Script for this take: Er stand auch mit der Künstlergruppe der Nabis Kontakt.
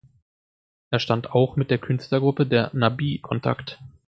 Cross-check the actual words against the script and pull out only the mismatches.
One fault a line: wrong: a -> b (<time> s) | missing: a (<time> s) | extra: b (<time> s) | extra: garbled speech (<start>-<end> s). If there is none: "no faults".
no faults